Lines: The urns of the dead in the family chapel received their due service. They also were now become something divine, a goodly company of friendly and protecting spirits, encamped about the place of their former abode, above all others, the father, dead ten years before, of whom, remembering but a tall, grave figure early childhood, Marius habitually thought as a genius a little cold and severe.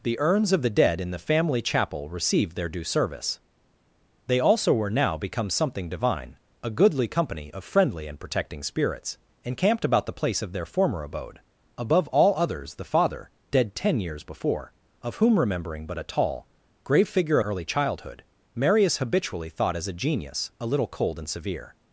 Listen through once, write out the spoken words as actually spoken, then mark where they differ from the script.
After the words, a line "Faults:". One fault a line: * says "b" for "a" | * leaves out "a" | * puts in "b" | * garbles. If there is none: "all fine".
The urns of the dead in the family chapel received their due service. They also were now become something divine, a goodly company of friendly and protecting spirits, encamped about the place of their former abode, above all others, the father, dead ten years before, of whom, remembering but a tall, grave figure early childhood, Marius habitually thought as a genius a little cold and severe.
Faults:
all fine